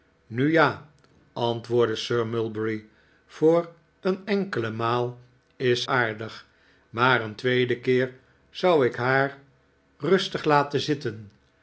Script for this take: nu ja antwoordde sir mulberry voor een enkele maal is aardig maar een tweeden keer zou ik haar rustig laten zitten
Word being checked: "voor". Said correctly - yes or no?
yes